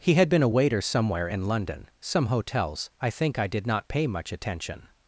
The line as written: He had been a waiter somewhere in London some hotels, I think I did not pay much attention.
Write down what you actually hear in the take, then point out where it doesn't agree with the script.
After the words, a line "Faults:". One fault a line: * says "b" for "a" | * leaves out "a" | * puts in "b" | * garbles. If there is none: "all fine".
He had been a waiter somewhere in London some hotels, I think I did not pay much attention.
Faults:
all fine